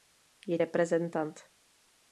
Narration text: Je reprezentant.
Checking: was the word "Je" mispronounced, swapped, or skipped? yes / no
no